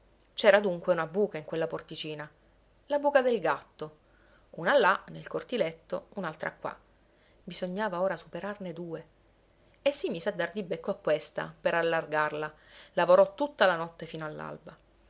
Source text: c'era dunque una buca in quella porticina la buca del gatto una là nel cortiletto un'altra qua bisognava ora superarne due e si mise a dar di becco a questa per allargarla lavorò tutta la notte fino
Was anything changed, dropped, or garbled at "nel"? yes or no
no